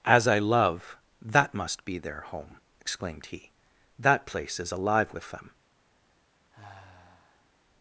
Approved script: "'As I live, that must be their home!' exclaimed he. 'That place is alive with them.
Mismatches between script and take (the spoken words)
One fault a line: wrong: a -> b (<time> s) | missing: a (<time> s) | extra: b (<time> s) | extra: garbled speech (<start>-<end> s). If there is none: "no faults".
wrong: live -> love (0.4 s)